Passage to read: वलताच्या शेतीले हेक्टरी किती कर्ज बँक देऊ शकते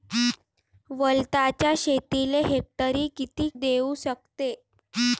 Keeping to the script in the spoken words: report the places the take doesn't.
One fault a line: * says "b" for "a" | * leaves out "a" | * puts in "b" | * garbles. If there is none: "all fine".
* leaves out "कर्ज बँक"